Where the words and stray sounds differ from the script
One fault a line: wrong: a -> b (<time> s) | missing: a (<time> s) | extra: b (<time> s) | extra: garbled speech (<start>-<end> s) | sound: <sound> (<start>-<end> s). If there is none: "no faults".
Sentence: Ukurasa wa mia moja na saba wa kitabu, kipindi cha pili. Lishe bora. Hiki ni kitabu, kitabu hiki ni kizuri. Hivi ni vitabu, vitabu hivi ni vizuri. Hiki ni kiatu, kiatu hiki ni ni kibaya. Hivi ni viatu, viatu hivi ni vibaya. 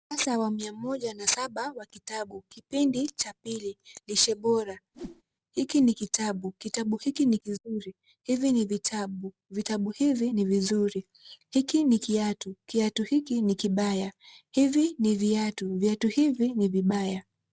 sound: whoosh (4.9-5.2 s)
missing: ni (13.5 s)